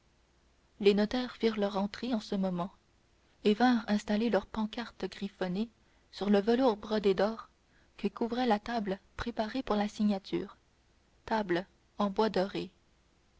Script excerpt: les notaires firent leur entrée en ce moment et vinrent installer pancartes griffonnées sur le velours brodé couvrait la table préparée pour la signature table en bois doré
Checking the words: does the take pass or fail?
fail